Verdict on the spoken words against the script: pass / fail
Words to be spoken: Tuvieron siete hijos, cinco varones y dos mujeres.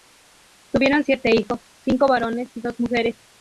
pass